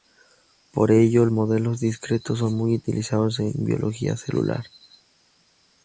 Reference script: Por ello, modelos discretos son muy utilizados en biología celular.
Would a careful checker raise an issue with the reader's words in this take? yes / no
no